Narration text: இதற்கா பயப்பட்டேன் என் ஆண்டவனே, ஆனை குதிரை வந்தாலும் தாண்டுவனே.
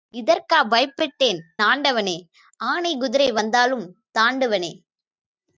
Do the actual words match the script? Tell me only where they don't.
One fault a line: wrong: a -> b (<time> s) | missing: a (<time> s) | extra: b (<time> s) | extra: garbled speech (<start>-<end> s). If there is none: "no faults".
missing: என் (1.4 s)